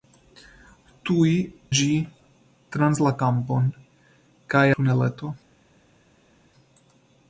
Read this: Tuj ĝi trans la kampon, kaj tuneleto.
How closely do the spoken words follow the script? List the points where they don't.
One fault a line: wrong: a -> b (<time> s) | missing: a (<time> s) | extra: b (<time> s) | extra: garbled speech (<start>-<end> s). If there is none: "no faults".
no faults